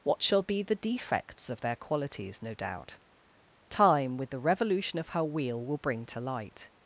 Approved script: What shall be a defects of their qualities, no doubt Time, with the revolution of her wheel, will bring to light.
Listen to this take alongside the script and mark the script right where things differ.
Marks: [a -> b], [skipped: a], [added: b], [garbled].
What shall be [a -> the] defects of their qualities, no doubt Time, with the revolution of her wheel, will bring to light.